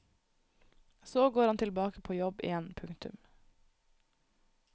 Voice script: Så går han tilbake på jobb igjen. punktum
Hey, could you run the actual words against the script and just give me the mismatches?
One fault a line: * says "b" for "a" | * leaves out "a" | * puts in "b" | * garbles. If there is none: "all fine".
all fine